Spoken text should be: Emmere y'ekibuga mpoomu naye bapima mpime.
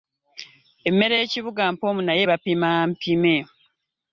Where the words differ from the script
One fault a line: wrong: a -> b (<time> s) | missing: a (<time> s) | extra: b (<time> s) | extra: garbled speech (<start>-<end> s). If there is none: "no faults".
no faults